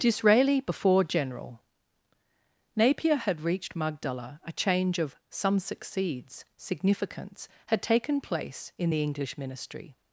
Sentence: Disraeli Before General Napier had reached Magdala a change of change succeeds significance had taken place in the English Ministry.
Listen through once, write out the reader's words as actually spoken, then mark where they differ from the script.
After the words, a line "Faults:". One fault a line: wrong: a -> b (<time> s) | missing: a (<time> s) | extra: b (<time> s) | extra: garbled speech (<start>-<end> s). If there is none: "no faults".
Disraeli Before General Napier had reached Magdala a change of some succeeds significance had taken place in the English Ministry.
Faults:
wrong: change -> some (5.3 s)